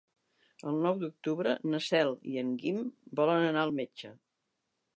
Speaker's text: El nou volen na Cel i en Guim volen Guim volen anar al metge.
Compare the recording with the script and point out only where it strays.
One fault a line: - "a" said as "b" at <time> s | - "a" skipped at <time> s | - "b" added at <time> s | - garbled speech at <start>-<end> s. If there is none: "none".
- "volen" said as "d'octubre" at 1.0 s
- "Guim volen" skipped at 3.5 s